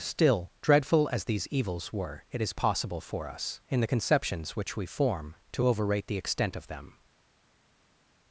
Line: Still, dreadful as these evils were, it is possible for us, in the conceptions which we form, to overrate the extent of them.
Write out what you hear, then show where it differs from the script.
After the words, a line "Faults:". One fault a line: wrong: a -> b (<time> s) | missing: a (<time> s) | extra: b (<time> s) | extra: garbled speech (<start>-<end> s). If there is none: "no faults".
Still, dreadful as these evils were, it is possible for us, in the conceptions which we form, to overrate the extent of them.
Faults:
no faults